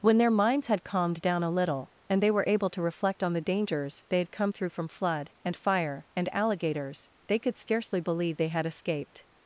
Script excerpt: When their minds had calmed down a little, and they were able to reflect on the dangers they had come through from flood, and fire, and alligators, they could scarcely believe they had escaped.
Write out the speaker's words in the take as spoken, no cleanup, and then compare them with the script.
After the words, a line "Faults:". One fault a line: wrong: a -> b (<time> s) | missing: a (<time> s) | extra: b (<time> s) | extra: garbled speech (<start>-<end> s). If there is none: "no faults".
When their minds had calmed down a little, and they were able to reflect on the dangers they had come through from flood, and fire, and alligators, they could scarcely believe they had escaped.
Faults:
no faults